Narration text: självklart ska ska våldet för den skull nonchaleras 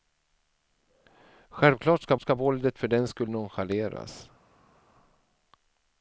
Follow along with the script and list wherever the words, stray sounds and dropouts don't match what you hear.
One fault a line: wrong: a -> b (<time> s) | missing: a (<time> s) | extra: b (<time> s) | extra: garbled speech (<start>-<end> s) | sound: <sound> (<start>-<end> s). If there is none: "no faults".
no faults